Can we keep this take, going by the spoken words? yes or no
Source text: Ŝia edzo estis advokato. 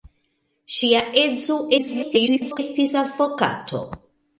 no